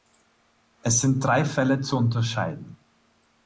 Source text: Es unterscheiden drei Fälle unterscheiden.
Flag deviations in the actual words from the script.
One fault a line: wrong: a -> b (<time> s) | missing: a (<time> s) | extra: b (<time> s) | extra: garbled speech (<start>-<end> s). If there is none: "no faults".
wrong: unterscheiden -> sind (1.0 s)
extra: zu (1.8 s)